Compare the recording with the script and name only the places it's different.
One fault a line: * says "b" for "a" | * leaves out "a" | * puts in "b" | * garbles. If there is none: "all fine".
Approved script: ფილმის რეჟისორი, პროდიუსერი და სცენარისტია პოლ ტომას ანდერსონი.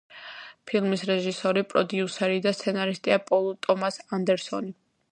all fine